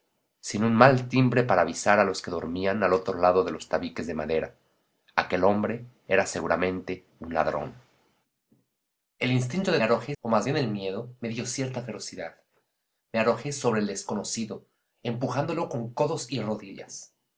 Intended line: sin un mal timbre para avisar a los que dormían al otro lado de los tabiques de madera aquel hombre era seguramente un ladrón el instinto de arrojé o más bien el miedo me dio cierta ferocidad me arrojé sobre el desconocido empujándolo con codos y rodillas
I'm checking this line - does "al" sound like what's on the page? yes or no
yes